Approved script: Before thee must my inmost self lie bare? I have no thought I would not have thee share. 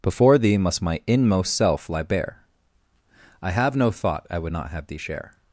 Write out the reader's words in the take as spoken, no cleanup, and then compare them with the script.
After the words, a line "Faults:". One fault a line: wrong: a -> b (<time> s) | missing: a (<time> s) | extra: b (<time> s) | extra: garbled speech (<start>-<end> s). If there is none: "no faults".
Before thee must my inmost self lie bare? I have no thought I would not have thee share.
Faults:
no faults